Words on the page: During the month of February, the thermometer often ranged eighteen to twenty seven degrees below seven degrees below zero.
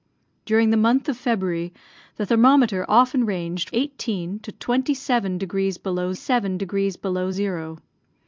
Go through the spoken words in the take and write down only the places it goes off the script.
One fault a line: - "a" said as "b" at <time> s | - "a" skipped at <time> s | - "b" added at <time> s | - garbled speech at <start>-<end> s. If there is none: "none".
none